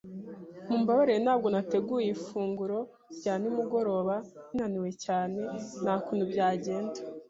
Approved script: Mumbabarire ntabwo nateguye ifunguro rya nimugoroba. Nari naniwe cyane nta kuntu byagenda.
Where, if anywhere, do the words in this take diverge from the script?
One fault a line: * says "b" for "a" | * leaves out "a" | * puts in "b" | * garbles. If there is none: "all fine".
* leaves out "Nari"